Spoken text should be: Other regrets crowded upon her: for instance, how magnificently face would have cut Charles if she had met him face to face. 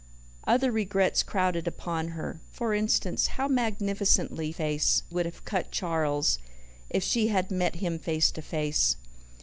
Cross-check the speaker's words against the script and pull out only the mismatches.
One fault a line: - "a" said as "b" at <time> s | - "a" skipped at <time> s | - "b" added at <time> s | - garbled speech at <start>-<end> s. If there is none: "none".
none